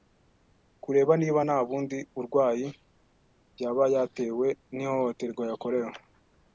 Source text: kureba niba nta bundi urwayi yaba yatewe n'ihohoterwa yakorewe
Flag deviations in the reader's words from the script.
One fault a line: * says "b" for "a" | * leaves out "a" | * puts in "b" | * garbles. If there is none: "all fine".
all fine